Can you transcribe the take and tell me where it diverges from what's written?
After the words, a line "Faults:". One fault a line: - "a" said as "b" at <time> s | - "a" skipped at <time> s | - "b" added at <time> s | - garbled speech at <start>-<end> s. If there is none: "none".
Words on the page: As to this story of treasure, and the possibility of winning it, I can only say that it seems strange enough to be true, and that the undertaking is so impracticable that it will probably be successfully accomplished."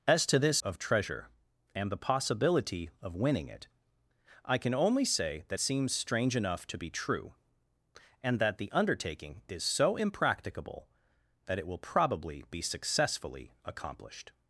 As to this of treasure, and the possibility of winning it, I can only say that seems strange enough to be true, and that the undertaking is so impracticable that it will probably be successfully accomplished."
Faults:
- "story" skipped at 0.6 s
- "it" skipped at 5.6 s